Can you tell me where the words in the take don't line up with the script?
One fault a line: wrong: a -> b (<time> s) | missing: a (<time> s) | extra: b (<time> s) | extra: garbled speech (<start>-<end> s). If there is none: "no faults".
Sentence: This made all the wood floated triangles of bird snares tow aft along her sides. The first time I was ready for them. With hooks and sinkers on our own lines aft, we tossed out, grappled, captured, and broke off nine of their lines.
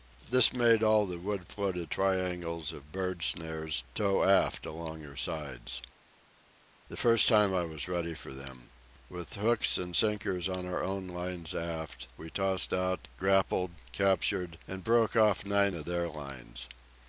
no faults